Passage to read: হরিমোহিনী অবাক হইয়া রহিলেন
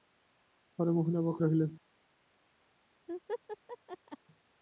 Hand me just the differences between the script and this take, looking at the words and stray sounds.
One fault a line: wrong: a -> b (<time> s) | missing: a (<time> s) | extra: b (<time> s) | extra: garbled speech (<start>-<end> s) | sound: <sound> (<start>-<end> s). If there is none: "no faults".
missing: হইয়া (1.4 s)
sound: laugh (3.1-4.2 s)